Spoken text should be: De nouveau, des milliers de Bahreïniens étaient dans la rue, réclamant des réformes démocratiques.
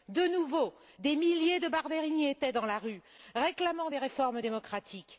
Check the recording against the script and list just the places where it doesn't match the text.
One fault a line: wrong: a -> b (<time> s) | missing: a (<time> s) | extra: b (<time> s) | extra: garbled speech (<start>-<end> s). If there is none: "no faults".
no faults